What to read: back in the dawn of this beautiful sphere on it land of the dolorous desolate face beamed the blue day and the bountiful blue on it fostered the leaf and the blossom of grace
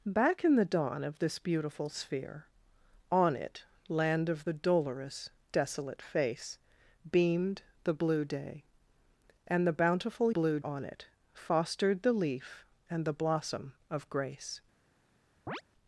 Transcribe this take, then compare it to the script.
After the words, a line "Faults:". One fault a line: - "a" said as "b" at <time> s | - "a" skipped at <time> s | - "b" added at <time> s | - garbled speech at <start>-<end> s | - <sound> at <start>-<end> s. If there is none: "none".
back in the dawn of this beautiful sphere on it land of the dolorous desolate face beamed the blue day and the bountiful blue on it fostered the leaf and the blossom of grace
Faults:
- chirp at 15.5-15.6 s